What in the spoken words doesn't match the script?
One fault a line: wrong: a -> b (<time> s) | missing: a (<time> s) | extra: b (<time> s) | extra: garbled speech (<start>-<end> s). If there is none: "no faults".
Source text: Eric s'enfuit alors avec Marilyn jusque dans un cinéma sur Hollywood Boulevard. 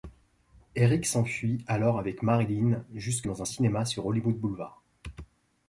no faults